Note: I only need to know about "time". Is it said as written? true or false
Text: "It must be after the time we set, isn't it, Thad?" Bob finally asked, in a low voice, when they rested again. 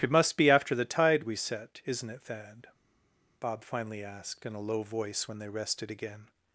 false